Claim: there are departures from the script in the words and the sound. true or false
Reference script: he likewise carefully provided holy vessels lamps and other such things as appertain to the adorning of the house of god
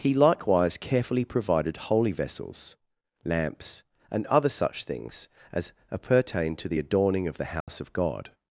true